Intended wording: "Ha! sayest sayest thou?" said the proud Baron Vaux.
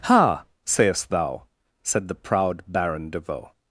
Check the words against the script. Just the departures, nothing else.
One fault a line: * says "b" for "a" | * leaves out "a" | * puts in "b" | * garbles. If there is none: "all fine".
* leaves out "sayest"
* puts in "de"